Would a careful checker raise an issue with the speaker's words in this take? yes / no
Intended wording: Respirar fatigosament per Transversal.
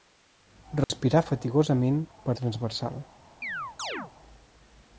no